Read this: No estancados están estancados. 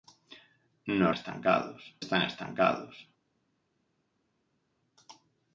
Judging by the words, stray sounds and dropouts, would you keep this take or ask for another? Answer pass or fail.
pass